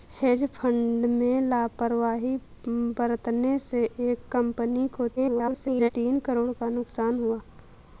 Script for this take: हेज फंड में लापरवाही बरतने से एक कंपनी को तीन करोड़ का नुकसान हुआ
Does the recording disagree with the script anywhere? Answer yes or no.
yes